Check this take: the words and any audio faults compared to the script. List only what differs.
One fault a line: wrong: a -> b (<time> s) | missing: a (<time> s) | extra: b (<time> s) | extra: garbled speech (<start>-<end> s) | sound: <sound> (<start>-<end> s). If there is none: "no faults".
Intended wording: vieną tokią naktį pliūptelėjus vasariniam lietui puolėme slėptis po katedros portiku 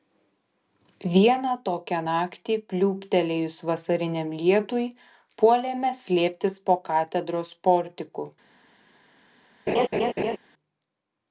sound: laugh (9.7-10.4 s)